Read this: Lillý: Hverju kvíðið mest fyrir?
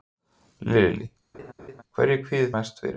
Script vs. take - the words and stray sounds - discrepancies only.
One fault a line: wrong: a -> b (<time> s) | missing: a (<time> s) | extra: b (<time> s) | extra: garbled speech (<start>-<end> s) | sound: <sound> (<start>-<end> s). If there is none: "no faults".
sound: laugh (1.3-1.8 s)